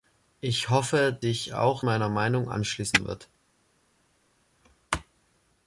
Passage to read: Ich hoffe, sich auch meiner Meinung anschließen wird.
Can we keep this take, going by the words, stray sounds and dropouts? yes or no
yes